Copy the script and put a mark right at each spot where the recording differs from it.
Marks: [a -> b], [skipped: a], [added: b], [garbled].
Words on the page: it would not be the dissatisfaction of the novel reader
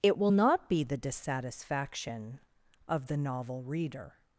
it [would -> will] not be the dissatisfaction of the novel reader